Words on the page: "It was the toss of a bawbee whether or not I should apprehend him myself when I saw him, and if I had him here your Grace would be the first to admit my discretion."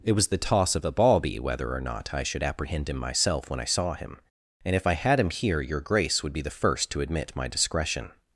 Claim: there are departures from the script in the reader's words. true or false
false